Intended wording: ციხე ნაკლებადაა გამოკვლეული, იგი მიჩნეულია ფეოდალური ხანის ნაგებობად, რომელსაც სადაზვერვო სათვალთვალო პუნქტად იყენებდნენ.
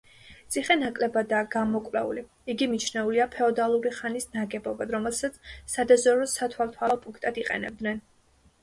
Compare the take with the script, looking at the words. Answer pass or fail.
pass